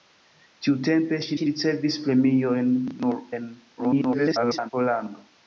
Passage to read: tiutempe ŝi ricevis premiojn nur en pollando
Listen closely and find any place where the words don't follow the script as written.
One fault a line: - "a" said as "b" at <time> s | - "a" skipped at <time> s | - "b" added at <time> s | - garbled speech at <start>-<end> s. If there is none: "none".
- "ŝi" added at 1.4 s
- garbled speech at 3.8-4.7 s